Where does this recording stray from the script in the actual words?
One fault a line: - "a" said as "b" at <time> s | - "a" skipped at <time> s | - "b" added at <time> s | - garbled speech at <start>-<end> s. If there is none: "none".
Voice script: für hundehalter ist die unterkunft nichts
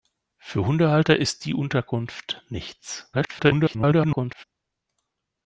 - garbled speech at 3.1-4.4 s